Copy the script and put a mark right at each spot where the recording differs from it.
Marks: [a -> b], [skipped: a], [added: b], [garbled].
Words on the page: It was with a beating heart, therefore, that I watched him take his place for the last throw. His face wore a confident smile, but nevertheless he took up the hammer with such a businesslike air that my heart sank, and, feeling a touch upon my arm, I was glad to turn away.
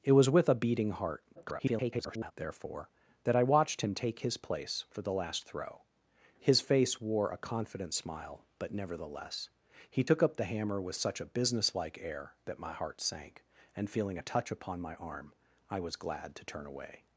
It was with a beating heart, [garbled] therefore, that I watched him take his place for the last throw. His face wore a confident smile, but nevertheless he took up the hammer with such a businesslike air that my heart sank, and, feeling a touch upon my arm, I was glad to turn away.